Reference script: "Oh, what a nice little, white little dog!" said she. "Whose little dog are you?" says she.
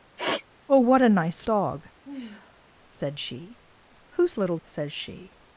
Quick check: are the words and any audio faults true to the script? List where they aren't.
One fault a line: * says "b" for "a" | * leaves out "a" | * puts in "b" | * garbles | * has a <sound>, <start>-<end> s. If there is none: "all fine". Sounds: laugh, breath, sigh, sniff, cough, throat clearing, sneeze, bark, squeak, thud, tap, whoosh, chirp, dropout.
* has a sniff, 0.2-0.4 s
* leaves out "little white little"
* has a sigh, 2.0-2.7 s
* leaves out "dog are you"